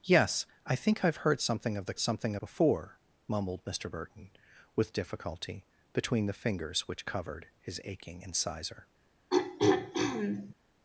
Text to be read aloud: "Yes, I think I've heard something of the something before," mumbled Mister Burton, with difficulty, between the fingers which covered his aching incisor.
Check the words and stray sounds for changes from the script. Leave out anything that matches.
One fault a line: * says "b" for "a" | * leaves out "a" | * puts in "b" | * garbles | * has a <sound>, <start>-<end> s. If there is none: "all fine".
* has a throat clearing, 9.3-10.5 s